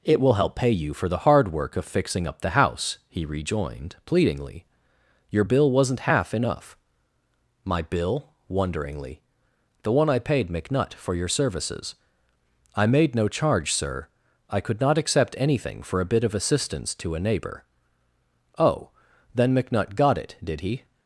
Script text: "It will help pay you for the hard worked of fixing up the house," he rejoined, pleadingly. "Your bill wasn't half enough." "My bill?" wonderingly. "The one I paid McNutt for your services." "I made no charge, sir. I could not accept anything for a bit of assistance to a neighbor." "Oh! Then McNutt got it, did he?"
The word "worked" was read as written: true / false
false